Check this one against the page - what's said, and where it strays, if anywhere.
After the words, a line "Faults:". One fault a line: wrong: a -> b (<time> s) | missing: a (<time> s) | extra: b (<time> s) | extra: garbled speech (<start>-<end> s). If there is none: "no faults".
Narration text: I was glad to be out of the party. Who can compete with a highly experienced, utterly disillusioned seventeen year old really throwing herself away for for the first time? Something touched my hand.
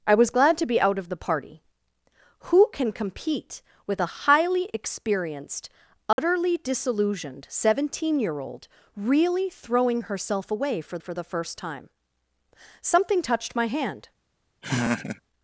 I was glad to be out of the party. Who can compete with a highly experienced, utterly disillusioned seventeen year old really throwing herself away for for the first time? Something touched my hand.
Faults:
no faults